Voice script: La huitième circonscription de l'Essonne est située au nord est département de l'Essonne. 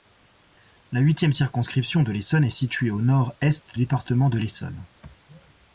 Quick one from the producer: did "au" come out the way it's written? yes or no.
yes